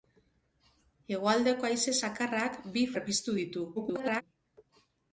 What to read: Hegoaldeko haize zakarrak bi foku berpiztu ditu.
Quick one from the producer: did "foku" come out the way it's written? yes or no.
no